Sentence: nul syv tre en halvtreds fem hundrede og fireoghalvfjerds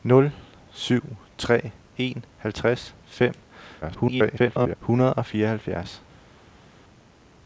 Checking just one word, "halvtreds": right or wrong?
right